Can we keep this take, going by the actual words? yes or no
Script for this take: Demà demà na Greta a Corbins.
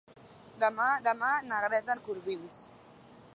yes